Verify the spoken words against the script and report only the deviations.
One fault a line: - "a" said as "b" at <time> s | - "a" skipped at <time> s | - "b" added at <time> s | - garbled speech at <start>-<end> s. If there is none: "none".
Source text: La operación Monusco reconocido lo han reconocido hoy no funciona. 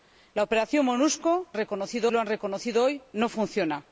none